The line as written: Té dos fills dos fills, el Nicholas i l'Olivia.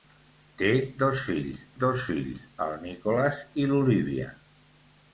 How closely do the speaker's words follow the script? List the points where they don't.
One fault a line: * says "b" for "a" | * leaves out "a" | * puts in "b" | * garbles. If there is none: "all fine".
all fine